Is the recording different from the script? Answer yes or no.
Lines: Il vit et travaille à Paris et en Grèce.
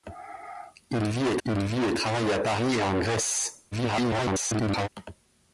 yes